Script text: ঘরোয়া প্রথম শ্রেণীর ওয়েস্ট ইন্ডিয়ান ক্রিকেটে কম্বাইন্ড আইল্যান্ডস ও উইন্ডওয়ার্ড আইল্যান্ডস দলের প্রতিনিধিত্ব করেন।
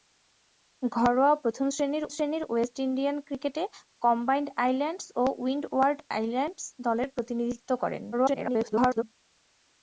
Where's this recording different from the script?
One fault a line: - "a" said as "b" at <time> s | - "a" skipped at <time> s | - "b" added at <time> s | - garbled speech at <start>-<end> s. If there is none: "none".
- "শ্রেণীর" added at 2.1 s
- garbled speech at 8.1-9.0 s